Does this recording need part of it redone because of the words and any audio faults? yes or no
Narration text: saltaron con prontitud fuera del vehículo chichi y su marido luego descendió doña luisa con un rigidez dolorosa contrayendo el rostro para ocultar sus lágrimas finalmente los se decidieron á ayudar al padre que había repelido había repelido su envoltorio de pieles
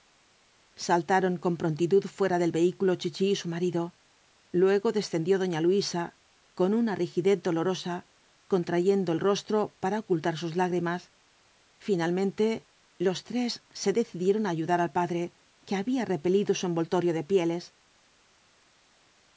yes